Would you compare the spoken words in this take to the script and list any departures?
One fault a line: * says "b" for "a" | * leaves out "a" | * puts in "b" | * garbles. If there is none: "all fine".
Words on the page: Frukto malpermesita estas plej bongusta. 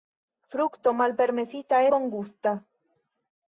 * leaves out "estas plej"